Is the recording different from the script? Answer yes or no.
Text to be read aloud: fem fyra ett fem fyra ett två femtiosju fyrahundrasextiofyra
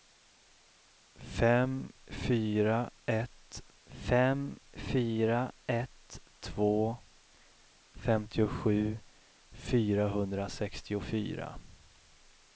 no